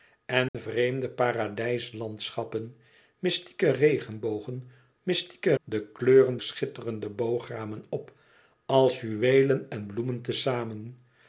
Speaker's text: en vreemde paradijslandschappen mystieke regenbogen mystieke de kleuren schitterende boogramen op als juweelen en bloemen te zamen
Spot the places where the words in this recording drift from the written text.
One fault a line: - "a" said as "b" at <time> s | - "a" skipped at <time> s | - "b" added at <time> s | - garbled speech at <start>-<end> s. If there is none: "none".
none